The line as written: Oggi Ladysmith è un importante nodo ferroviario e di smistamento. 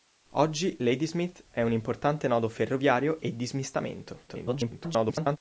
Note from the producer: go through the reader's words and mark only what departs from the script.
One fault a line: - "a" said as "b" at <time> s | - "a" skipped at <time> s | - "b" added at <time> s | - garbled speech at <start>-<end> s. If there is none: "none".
- garbled speech at 4.3-5.4 s